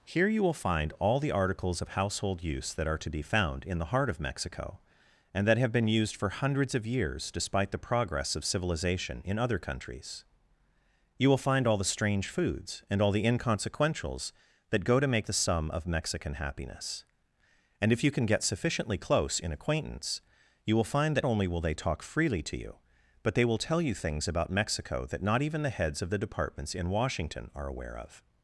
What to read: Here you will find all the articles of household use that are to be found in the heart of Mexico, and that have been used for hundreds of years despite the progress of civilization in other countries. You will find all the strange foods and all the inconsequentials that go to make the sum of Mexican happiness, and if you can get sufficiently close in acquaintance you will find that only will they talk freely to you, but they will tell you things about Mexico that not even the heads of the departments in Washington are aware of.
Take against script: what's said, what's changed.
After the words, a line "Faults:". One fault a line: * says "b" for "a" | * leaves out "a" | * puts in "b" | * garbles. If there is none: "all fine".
Here you will find all the articles of household use that are to be found in the heart of Mexico, and that have been used for hundreds of years despite the progress of civilization in other countries. You will find all the strange foods and all the inconsequentials that go to make the sum of Mexican happiness, and if you can get sufficiently close in acquaintance you will find that only will they talk freely to you, but they will tell you things about Mexico that not even the heads of the departments in Washington are aware of.
Faults:
all fine